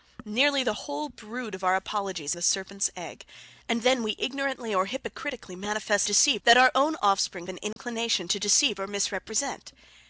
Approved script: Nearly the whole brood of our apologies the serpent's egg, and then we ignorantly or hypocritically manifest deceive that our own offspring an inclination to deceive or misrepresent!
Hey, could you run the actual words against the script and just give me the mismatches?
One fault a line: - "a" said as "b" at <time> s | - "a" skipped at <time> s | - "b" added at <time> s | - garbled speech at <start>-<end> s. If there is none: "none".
none